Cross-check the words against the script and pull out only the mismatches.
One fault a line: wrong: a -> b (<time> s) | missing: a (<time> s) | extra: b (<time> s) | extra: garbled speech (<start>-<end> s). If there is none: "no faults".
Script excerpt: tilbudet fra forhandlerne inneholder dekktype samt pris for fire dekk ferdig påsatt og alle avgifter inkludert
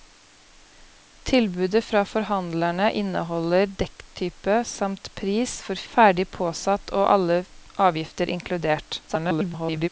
missing: fire dekk (5.8 s)
extra: garbled speech (9.1-9.9 s)